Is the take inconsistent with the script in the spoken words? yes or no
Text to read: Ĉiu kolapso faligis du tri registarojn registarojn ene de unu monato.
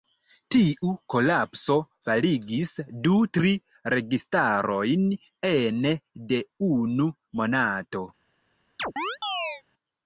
yes